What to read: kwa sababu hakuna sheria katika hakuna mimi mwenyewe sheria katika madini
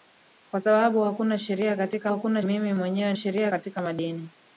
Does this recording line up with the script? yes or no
yes